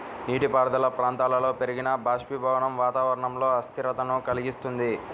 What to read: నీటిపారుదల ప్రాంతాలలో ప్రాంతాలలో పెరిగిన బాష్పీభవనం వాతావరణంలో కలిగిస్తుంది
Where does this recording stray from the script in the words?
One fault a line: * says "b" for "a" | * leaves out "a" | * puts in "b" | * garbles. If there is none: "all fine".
* leaves out "ప్రాంతాలలో"
* puts in "అస్థిరతను"